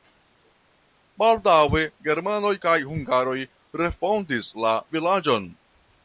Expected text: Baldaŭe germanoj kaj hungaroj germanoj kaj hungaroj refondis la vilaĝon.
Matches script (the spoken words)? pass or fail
fail